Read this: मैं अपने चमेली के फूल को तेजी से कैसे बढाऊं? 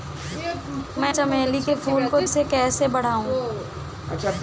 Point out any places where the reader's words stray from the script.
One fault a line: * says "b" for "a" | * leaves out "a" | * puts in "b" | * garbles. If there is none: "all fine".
* leaves out "अपने"
* leaves out "तेजी"